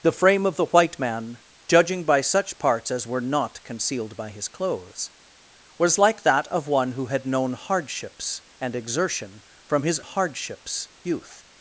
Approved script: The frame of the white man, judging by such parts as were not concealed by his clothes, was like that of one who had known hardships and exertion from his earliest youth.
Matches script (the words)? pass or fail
fail